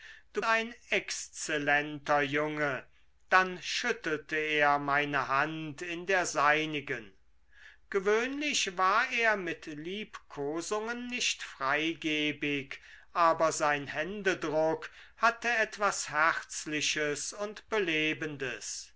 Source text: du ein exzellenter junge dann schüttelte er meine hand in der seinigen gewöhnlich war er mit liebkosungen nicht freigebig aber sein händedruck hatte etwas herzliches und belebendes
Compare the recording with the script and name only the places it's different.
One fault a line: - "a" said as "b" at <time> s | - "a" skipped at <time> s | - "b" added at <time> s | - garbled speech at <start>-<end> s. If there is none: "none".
none